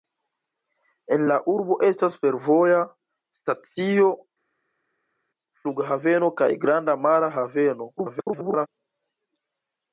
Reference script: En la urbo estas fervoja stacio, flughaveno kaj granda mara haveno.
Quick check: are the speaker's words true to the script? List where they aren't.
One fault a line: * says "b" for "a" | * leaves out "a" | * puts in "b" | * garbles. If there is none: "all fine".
* garbles